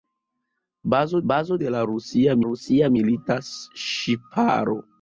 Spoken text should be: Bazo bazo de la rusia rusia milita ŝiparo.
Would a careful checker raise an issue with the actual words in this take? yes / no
no